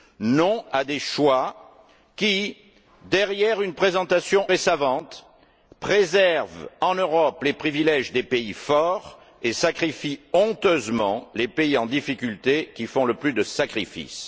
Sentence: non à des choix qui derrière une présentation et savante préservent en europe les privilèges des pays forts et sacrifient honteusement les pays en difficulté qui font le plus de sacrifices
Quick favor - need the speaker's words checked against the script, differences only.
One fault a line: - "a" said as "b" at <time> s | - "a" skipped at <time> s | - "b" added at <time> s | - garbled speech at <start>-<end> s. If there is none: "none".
none